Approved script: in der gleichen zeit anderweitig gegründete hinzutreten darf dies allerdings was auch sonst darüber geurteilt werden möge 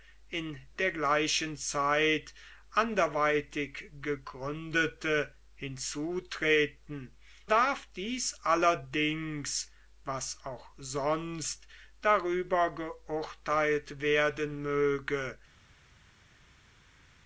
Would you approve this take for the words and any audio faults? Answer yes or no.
yes